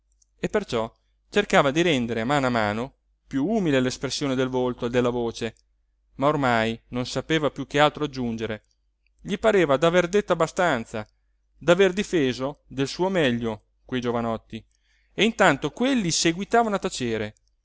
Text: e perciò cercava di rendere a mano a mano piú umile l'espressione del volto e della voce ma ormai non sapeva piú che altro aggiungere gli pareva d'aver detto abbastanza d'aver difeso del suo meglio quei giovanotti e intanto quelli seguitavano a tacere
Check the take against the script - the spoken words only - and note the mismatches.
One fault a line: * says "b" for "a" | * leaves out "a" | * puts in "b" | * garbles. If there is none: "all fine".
all fine